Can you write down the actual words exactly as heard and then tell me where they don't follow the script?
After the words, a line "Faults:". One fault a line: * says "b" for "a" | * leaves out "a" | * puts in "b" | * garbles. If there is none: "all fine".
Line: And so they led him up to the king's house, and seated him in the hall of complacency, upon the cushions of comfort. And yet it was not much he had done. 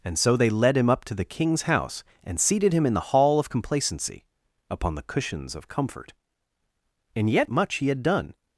And so they led him up to the king's house, and seated him in the hall of complacency, upon the cushions of comfort. And yet much he had done.
Faults:
* leaves out "it was not"